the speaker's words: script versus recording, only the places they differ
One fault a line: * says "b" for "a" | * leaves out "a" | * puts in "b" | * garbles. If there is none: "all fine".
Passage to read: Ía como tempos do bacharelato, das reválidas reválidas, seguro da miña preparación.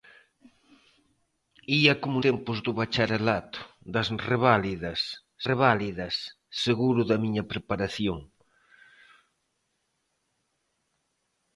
all fine